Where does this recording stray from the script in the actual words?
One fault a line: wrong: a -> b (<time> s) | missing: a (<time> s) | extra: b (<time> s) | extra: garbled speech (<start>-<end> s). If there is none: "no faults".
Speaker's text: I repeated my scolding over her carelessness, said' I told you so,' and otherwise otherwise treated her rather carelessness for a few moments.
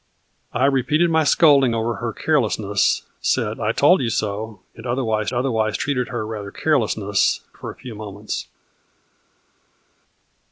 no faults